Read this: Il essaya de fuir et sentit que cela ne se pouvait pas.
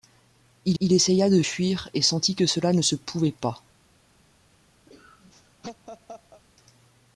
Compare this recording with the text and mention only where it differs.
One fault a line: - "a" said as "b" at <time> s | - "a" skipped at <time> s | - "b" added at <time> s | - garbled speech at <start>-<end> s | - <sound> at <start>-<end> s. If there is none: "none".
- "il" added at 0.8 s
- laugh at 4.9-6.4 s